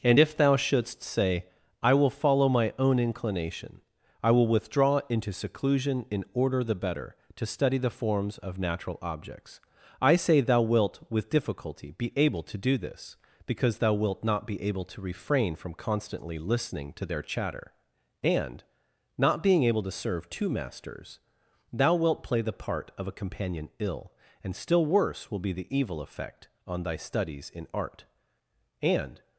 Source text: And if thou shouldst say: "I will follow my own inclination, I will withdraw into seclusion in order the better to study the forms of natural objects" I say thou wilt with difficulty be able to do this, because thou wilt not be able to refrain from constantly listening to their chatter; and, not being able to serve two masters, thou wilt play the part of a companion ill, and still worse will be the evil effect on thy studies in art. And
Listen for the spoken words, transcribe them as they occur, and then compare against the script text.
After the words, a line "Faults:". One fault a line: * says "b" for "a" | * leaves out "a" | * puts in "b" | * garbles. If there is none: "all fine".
And if thou shouldst say: "I will follow my own inclination, I will withdraw into seclusion in order the better to study the forms of natural objects" I say thou wilt with difficulty be able to do this, because thou wilt not be able to refrain from constantly listening to their chatter; and, not being able to serve two masters, thou wilt play the part of a companion ill, and still worse will be the evil effect on thy studies in art. And
Faults:
all fine